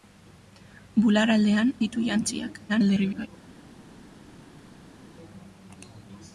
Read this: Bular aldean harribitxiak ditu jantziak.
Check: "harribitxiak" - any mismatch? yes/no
yes